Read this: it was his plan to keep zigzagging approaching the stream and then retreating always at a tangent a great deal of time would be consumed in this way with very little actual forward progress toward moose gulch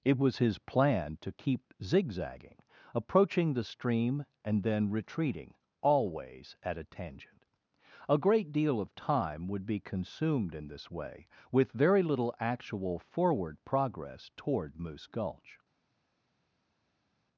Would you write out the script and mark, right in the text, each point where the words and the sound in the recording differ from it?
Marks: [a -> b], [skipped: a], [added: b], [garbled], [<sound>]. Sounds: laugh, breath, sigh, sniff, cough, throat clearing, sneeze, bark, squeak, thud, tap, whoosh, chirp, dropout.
it was his plan to keep zigzagging approaching the stream and then retreating always at a tangent a great deal of time would be consumed in this way with very little actual forward progress toward moose gulch